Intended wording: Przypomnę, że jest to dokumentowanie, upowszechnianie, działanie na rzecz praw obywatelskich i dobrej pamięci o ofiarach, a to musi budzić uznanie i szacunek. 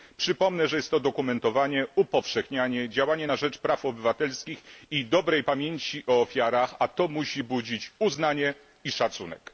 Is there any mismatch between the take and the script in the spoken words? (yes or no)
no